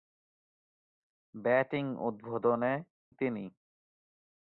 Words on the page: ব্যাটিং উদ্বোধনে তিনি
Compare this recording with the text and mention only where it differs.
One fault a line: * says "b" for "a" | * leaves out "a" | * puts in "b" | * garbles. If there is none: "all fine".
all fine